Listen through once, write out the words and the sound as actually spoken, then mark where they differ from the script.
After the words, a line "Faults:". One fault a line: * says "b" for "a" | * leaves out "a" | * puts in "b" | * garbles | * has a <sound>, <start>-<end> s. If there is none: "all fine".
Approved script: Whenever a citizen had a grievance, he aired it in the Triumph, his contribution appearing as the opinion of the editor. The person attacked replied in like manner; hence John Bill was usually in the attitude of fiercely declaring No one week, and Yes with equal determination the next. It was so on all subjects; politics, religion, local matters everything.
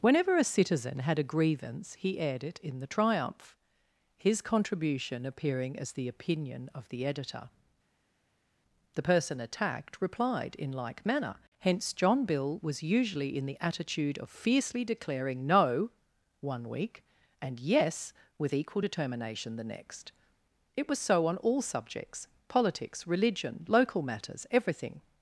Whenever a citizen had a grievance, he aired it in the Triumph, his contribution appearing as the opinion of the editor. The person attacked replied in like manner; hence John Bill was usually in the attitude of fiercely declaring No one week, and Yes with equal determination the next. It was so on all subjects; politics, religion, local matters everything.
Faults:
all fine